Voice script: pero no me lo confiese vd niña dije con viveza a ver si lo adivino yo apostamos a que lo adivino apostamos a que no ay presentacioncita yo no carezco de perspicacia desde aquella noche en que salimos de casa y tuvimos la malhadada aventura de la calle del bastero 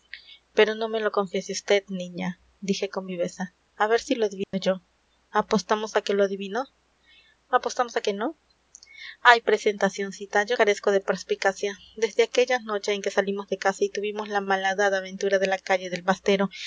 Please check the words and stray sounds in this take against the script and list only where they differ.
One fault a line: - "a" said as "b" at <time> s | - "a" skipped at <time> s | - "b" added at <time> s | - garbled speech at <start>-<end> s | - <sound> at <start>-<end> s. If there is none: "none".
- dropout at 4.4-4.5 s
- "no" skipped at 10.6 s